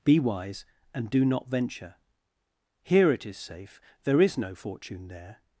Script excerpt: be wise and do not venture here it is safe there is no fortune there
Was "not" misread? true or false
false